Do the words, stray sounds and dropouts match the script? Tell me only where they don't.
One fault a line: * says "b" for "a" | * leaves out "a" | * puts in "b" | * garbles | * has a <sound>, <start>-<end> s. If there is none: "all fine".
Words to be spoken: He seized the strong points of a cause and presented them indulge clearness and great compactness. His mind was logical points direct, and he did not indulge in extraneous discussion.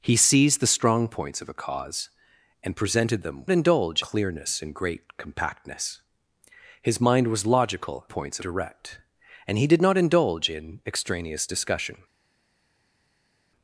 all fine